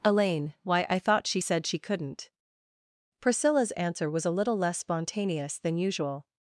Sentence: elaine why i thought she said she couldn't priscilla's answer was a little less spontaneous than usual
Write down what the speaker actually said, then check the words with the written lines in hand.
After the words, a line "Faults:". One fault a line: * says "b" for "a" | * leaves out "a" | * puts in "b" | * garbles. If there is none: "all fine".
elaine why i thought she said she couldn't priscilla's answer was a little less spontaneous than usual
Faults:
all fine